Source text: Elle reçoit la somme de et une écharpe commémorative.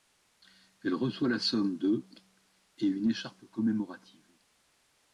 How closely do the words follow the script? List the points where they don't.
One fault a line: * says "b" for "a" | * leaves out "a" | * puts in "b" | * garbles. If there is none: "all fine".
all fine